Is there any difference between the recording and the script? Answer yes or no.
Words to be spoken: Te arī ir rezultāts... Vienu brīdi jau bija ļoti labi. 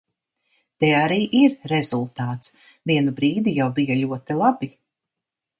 no